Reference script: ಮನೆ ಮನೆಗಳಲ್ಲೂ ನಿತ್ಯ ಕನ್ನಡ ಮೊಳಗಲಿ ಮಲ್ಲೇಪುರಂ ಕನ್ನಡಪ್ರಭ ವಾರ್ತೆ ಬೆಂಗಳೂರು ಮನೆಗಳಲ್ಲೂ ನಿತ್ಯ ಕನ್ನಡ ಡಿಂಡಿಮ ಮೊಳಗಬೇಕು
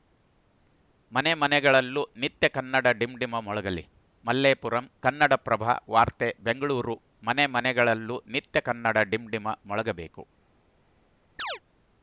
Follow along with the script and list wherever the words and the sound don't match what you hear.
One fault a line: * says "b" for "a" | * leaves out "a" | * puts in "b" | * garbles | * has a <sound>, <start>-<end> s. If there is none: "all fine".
* puts in "ಡಿಂಡಿಮ"
* puts in "ಮನೆ"
* has a chirp, 11.4-11.6 s